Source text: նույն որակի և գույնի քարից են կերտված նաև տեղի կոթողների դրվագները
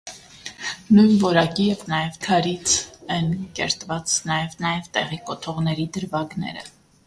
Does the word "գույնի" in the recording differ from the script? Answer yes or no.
yes